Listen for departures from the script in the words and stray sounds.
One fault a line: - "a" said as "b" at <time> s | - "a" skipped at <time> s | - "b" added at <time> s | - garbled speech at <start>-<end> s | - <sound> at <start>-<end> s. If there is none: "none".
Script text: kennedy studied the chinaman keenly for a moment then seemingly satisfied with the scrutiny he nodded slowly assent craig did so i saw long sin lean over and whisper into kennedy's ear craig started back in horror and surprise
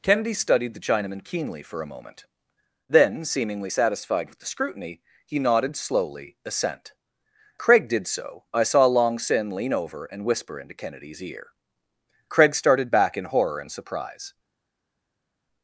none